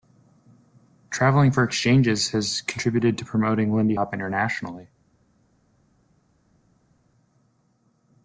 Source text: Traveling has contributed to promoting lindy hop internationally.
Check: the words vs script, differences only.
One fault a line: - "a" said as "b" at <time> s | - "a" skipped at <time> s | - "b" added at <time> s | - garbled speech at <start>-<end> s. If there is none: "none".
- "for exchanges" added at 1.5 s